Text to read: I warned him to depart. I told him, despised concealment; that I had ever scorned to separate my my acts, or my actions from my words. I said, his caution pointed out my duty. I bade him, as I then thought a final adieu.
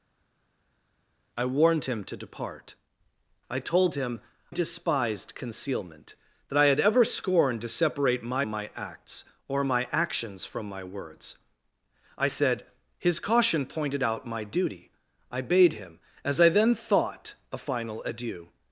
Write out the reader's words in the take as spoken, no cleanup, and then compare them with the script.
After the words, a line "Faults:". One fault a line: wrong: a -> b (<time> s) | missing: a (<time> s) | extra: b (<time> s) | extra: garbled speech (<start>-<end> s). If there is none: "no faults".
I warned him to depart. I told him, despised concealment; that I had ever scorned to separate my my acts, or my actions from my words. I said, his caution pointed out my duty. I bade him, as I then thought a final adieu.
Faults:
no faults